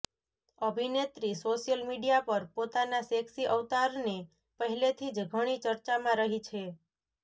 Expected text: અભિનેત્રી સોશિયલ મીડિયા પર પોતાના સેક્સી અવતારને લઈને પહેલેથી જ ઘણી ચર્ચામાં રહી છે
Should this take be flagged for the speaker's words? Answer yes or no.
yes